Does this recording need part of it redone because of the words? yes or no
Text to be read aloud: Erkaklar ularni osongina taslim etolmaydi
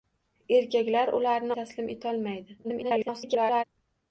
yes